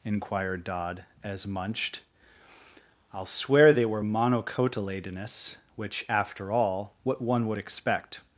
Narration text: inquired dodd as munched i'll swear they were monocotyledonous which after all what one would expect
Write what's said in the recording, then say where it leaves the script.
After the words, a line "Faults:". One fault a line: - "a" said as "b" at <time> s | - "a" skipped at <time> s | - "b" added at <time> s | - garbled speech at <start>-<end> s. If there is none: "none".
inquired dodd as munched i'll swear they were monocotyledonous which after all what one would expect
Faults:
none